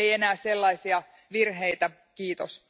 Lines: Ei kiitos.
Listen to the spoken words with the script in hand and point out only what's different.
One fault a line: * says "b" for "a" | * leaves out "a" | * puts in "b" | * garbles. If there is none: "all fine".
* puts in "enää sellaisia virheitä"